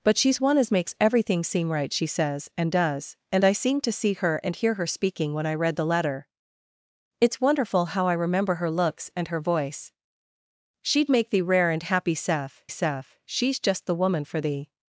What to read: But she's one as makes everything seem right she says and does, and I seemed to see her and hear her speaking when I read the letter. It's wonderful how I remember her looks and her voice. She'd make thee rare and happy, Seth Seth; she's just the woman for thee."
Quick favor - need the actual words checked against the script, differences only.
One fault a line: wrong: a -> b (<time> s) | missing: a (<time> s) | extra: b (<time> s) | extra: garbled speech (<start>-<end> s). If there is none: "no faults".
no faults